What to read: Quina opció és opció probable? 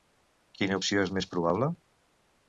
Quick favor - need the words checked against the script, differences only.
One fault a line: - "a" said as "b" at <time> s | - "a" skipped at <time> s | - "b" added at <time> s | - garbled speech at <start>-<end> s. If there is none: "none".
- "opció" said as "més" at 1.2 s